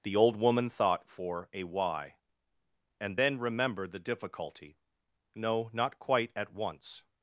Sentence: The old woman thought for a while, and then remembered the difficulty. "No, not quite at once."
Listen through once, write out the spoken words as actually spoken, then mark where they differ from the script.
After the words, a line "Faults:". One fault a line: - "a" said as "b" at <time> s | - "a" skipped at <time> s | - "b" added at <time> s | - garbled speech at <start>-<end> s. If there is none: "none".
The old woman thought for a why, and then remembered the difficulty. "No, not quite at once."
Faults:
- "while" said as "why" at 1.6 s